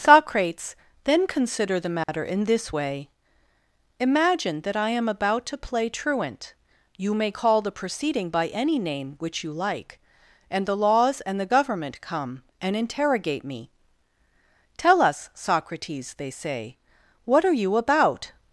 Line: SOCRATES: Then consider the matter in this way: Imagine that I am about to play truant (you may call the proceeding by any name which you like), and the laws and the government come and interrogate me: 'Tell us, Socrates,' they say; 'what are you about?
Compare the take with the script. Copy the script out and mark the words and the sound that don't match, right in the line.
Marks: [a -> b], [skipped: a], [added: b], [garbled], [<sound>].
SOCRATES: Then consider the matter [dropout] in this way: Imagine that I am about to play truant (you may call the proceeding by any name which you like), and the laws and the government come and interrogate me: 'Tell us, Socrates,' they say; 'what are you about?